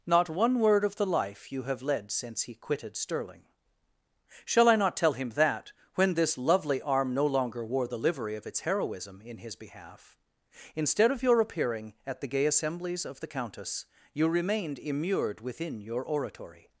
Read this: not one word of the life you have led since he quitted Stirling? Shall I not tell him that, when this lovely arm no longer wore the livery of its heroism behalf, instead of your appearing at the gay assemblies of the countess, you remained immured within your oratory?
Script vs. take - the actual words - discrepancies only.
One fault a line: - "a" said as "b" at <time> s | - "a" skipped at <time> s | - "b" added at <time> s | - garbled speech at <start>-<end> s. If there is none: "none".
- "in his" added at 9.2 s